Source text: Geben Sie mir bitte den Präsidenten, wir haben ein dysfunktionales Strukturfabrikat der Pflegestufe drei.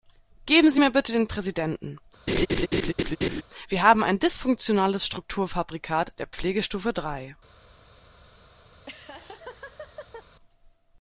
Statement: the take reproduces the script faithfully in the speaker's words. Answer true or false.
true